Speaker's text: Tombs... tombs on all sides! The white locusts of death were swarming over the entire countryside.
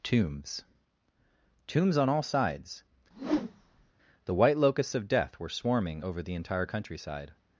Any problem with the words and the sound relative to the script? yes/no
yes